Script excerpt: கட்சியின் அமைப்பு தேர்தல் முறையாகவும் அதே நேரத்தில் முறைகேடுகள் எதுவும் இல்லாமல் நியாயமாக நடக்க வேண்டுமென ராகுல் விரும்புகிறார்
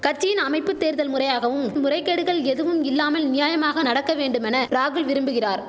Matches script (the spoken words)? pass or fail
fail